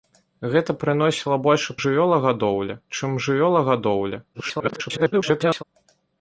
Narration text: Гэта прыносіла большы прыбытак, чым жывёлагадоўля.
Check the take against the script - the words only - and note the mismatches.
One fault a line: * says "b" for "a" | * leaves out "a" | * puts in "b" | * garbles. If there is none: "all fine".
* says "жывёлагадоўля" for "прыбытак"
* garbles